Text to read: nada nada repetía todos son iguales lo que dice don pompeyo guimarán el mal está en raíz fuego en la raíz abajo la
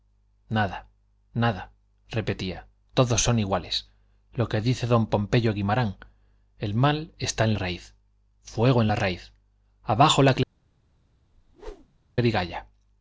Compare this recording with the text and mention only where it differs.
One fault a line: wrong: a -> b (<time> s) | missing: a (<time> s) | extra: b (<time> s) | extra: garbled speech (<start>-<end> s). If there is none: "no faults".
no faults